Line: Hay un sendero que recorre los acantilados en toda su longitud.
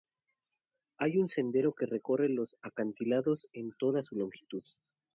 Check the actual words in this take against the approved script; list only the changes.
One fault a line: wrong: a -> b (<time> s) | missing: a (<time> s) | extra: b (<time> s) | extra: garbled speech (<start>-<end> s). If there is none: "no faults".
no faults